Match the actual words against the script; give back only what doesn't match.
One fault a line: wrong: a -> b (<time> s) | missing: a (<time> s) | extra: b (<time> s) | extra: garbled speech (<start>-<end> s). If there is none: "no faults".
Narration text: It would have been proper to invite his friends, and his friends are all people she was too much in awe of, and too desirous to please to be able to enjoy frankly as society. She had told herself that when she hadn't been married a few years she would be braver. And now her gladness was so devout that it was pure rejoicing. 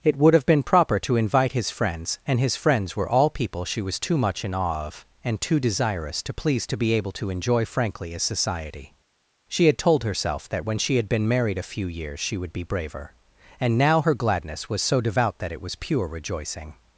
wrong: are -> were (3.0 s)
wrong: hadn't -> had (10.9 s)